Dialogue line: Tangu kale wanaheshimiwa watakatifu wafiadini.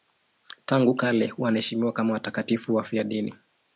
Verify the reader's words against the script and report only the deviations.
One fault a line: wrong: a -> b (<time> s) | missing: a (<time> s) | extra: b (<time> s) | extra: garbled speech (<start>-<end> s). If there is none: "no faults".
extra: kama (1.9 s)